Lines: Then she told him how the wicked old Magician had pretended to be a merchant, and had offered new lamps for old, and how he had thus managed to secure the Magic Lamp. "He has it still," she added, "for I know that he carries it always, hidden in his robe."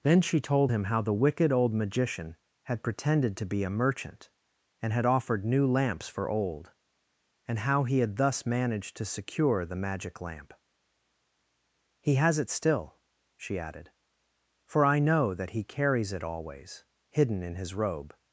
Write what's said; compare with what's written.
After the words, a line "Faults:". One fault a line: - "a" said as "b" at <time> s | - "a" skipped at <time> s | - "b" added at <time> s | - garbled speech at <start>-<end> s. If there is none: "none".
Then she told him how the wicked old Magician had pretended to be a merchant, and had offered new lamps for old, and how he had thus managed to secure the Magic Lamp. "He has it still," she added, "for I know that he carries it always, hidden in his robe."
Faults:
none